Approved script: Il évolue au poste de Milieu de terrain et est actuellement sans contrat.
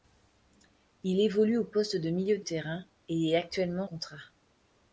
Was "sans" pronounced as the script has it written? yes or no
no